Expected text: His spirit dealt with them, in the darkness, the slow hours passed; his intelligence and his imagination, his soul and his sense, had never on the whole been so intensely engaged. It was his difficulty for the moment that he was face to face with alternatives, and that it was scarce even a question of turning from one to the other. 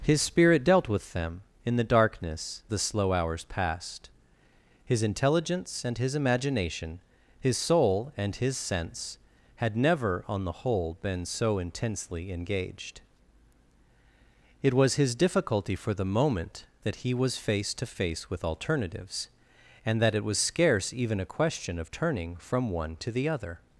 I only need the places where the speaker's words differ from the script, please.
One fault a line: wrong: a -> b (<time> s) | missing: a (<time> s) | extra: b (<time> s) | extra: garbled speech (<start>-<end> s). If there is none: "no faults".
no faults